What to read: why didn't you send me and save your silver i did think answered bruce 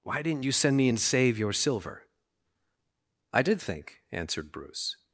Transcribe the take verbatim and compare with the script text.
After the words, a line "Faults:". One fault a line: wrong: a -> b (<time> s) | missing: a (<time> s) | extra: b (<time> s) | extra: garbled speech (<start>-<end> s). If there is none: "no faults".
why didn't you send me and save your silver i did think answered bruce
Faults:
no faults